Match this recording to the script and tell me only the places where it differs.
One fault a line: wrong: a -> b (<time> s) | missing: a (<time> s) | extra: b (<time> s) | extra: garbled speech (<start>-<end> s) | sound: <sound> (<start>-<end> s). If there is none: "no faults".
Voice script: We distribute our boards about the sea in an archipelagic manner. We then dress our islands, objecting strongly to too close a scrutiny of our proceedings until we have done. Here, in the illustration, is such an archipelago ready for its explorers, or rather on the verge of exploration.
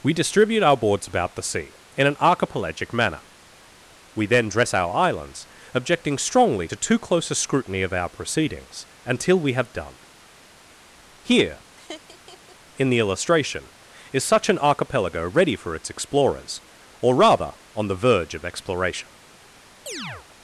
sound: laugh (11.7-12.6 s)
sound: chirp (19.9-20.3 s)